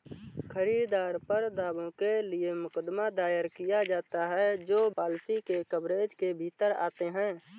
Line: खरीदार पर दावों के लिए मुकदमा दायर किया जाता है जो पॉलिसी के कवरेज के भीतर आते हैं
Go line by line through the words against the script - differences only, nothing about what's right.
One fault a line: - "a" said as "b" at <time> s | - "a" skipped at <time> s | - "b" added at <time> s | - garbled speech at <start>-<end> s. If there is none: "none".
none